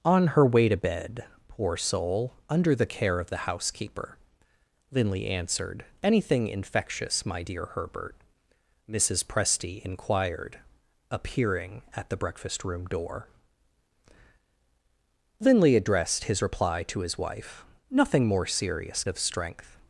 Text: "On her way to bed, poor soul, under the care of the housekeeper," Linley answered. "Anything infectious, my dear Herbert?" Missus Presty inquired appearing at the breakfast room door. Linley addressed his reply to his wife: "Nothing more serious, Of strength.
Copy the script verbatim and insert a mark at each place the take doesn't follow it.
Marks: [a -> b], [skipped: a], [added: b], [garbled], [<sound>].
"On her way to bed, poor soul, under the care of the housekeeper," Linley answered. "Anything infectious, my dear Herbert?" Missus Presty inquired appearing at the breakfast room door. Linley addressed his reply to his wife: "Nothing more serious, Of strength.